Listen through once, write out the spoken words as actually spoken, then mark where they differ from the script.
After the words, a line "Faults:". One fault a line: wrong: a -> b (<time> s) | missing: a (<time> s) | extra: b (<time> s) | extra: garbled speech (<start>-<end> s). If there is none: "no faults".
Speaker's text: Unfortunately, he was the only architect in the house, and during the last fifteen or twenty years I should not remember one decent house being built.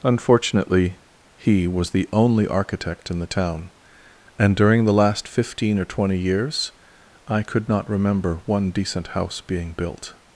Unfortunately, he was the only architect in the town, and during the last fifteen or twenty years I could not remember one decent house being built.
Faults:
wrong: house -> town (3.3 s)
wrong: should -> could (7.4 s)